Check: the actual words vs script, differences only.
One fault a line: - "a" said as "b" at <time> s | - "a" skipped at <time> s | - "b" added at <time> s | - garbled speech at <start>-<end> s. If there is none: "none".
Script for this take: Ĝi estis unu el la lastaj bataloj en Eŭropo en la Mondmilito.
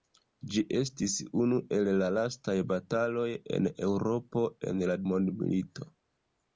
none